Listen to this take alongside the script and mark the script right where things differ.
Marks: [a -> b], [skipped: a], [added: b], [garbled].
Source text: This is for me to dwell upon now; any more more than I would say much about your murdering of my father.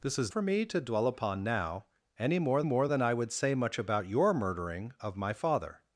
This is for me to dwell upon now; any more more than I would say much about your murdering of my father.